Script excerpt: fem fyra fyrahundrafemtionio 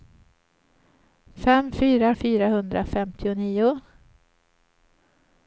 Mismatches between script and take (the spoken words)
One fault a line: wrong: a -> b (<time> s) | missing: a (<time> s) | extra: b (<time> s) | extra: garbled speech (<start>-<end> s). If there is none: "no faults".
no faults